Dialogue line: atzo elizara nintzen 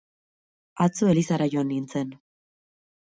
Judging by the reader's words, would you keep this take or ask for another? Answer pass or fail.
fail